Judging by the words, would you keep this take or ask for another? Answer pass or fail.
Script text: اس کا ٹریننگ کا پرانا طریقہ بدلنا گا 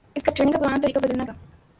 pass